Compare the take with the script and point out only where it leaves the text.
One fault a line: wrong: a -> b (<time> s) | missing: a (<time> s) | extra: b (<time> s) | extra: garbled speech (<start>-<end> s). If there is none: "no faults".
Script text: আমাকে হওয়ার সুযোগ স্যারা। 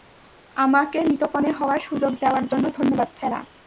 extra: নিতকনে (1.0 s)
extra: দেওয়ার জন্য ধন্যবাদ (2.2 s)